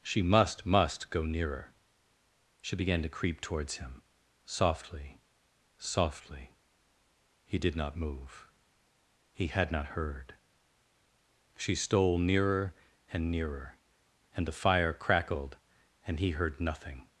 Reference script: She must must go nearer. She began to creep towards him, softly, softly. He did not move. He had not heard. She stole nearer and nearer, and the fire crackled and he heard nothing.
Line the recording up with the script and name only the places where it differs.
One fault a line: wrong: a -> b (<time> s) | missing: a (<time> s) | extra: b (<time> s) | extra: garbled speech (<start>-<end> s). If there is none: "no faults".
no faults